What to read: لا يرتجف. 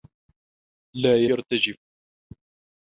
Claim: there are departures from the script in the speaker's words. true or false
false